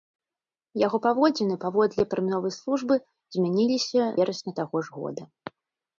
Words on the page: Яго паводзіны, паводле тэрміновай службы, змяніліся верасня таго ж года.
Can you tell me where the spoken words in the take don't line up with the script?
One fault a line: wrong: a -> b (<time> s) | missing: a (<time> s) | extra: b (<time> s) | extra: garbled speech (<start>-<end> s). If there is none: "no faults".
no faults